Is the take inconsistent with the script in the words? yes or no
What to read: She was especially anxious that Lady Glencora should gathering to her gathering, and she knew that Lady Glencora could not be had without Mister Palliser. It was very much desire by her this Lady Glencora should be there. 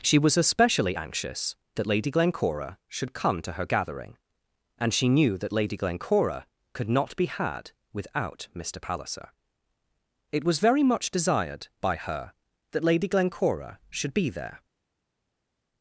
yes